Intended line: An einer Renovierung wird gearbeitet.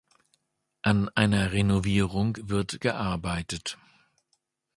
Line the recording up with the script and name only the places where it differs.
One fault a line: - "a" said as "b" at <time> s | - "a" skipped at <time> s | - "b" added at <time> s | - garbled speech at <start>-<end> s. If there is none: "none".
none